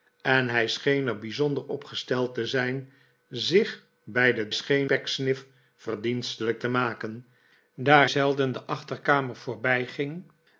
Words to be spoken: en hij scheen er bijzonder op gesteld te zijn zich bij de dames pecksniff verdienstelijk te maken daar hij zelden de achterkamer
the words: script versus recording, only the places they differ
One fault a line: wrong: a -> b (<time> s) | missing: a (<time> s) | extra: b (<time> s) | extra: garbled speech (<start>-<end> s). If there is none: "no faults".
wrong: dames -> scheen (4.5 s)
missing: hij (8.1 s)